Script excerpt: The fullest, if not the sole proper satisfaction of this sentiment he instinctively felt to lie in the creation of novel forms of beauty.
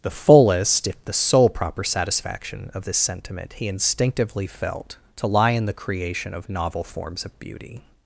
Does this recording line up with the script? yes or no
no